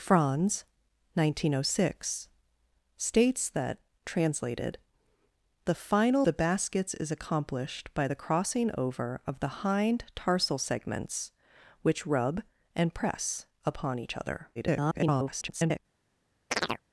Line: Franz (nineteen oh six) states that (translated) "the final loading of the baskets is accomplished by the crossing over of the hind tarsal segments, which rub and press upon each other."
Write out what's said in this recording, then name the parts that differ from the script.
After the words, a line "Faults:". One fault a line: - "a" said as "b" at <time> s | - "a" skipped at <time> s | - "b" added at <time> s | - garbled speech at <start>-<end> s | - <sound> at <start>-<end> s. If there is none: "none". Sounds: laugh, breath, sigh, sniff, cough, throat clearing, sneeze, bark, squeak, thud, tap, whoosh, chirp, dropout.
Franz (nineteen oh six) states that (translated) "the final the baskets is accomplished by the crossing over of the hind tarsal segments, which rub and press upon each other." [garbled]
Faults:
- "loading of" skipped at 6.3 s
- garbled speech at 14.5-15.8 s
- chirp at 16.5-16.8 s